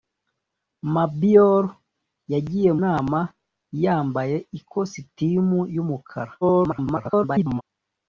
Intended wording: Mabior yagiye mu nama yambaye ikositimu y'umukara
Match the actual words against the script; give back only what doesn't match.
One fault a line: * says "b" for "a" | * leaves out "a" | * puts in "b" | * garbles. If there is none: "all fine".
* leaves out "mu"
* garbles